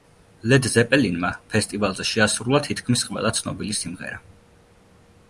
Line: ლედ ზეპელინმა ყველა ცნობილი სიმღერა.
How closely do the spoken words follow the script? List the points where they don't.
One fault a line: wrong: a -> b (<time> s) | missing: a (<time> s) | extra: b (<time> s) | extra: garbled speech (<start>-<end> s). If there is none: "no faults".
extra: ფესტივალზე შეასრულა თითქმის (1.6 s)